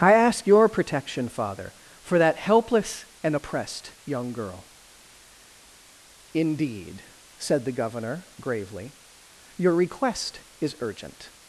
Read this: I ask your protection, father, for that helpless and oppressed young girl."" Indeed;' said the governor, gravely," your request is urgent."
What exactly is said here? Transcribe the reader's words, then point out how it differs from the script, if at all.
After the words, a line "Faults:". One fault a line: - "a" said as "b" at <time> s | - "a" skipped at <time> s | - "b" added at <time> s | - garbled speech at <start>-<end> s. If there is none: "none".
I ask your protection, father, for that helpless and oppressed young girl."" Indeed;' said the governor, gravely," your request is urgent."
Faults:
none